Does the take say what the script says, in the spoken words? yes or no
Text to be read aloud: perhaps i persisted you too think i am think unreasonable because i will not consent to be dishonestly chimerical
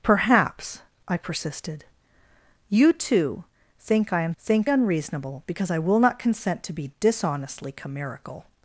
yes